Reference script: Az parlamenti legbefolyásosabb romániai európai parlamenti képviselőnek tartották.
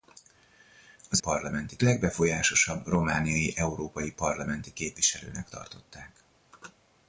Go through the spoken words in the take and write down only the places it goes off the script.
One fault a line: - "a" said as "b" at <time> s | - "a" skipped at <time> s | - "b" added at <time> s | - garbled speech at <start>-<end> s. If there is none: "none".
none